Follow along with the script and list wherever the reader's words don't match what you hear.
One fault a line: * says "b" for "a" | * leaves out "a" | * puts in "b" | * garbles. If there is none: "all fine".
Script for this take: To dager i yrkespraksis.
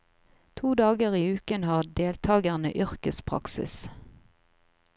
* puts in "uken har deltagerne"